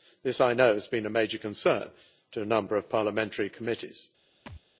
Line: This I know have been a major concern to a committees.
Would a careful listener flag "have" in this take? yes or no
yes